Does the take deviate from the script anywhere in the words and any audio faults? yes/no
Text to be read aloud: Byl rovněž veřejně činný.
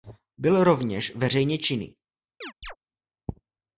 yes